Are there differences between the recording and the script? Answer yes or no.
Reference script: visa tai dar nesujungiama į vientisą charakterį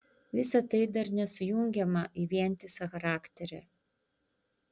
no